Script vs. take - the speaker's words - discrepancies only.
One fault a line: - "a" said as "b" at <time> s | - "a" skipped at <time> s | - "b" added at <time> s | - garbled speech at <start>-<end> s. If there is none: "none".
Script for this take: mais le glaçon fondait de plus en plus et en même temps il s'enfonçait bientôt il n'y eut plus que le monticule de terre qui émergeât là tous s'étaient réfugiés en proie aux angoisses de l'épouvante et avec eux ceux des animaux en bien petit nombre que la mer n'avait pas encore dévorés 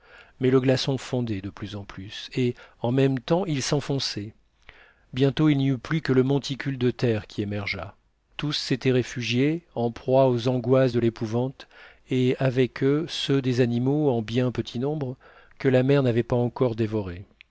- "là" skipped at 8.0 s